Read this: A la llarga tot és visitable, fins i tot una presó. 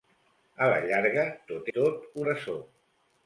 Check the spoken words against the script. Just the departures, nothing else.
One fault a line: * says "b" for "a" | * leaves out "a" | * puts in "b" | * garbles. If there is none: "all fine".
* leaves out "és visitable fins"
* leaves out "una"